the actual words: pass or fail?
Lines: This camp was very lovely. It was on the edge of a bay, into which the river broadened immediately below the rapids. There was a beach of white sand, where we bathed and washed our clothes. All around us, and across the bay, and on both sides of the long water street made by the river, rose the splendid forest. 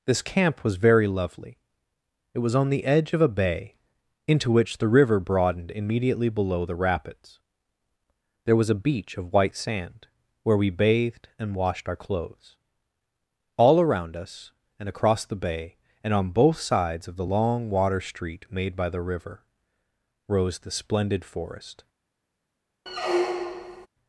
pass